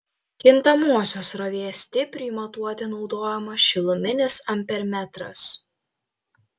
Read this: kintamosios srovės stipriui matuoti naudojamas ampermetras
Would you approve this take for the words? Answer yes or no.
no